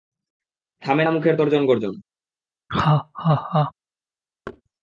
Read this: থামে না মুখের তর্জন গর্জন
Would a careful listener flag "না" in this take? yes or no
no